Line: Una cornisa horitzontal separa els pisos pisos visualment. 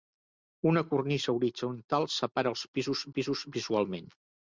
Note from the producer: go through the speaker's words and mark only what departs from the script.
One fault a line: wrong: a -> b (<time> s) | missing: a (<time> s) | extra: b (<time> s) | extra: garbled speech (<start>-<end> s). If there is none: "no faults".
no faults